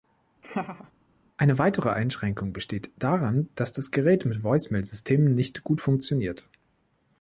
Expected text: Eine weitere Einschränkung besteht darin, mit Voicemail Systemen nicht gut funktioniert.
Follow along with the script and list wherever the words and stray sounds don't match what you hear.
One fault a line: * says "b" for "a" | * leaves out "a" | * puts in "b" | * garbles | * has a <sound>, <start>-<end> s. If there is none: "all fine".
* has a laugh, 0.4-0.9 s
* puts in "dass das Gerät"